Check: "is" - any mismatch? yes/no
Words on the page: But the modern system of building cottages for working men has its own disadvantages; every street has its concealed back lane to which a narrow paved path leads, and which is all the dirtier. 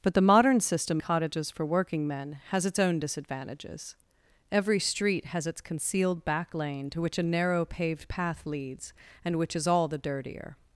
no